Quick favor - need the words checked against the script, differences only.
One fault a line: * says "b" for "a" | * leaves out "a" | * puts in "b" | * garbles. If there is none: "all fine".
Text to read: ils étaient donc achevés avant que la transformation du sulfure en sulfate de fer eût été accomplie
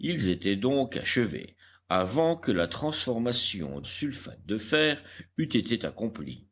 * leaves out "du sulfure en"